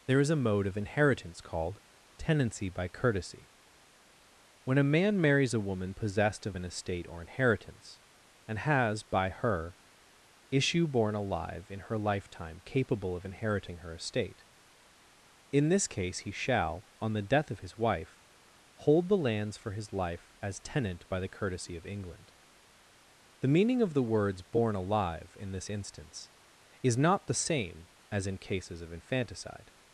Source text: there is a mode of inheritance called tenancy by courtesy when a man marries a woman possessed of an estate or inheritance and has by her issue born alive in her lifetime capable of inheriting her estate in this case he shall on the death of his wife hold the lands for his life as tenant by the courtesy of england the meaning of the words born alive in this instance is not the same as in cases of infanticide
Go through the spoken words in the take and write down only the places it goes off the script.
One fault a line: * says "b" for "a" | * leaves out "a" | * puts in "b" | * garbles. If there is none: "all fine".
all fine